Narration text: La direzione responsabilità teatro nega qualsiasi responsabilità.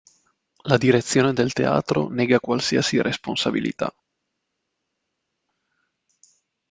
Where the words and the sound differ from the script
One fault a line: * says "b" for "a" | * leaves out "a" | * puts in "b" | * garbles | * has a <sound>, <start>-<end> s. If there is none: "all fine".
* says "del" for "responsabilità"